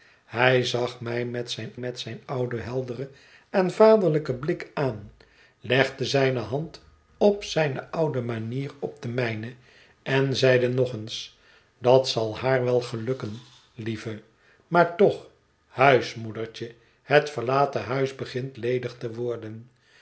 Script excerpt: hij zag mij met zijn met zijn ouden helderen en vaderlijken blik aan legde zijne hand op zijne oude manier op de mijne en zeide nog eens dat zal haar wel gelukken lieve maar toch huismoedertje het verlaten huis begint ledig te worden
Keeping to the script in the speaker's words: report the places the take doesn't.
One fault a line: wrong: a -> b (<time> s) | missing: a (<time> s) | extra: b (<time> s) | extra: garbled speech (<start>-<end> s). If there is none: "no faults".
no faults